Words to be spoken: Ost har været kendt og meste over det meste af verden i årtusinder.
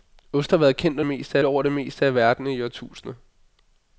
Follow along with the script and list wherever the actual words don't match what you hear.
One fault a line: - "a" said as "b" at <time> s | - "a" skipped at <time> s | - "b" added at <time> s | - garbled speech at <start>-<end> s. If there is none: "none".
none